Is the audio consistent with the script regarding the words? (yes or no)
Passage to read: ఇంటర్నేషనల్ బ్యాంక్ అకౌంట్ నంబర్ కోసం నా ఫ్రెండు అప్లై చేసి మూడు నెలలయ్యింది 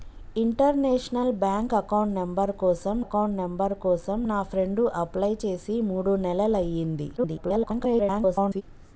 no